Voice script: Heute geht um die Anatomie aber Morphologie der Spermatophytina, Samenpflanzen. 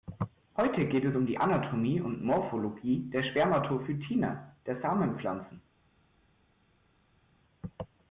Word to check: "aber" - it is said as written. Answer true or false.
false